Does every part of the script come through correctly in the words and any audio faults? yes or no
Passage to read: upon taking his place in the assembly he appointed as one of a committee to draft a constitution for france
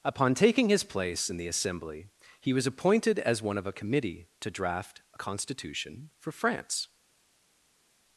no